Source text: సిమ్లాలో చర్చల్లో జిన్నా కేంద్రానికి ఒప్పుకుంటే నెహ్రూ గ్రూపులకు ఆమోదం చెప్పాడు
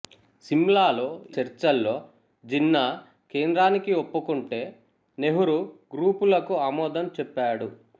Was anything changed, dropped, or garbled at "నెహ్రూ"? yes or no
no